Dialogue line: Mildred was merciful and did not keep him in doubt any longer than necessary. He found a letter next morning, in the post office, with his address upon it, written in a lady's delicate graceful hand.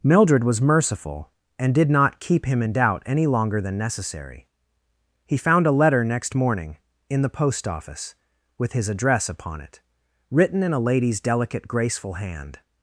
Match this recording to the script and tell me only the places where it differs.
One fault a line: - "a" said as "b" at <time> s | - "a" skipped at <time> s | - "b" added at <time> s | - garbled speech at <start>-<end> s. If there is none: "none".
none